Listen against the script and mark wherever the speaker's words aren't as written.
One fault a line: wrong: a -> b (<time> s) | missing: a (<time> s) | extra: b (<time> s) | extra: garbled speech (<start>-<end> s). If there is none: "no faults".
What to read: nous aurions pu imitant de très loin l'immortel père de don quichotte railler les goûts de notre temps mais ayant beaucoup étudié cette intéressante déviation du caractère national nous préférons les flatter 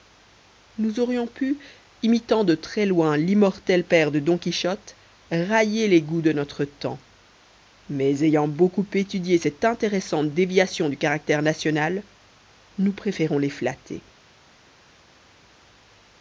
no faults